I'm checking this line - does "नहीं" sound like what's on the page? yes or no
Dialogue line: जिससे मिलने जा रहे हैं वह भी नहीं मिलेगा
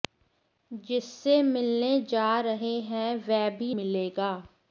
no